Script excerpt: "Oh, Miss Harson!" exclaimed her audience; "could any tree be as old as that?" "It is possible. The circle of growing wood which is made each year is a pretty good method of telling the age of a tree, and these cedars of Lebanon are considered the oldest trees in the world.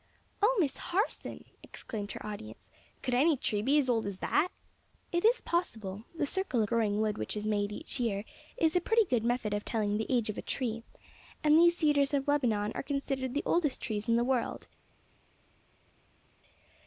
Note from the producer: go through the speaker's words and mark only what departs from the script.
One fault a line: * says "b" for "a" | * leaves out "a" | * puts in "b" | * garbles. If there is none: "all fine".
* leaves out "of"